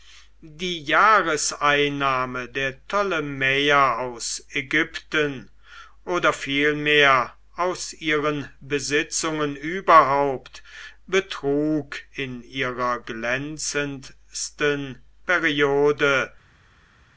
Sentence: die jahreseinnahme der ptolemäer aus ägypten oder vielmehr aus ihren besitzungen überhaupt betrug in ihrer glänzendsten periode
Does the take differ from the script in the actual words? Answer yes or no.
no